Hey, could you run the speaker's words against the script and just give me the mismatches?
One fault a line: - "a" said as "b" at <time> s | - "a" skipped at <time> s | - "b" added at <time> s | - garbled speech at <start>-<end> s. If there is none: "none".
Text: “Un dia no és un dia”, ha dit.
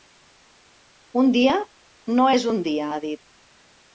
none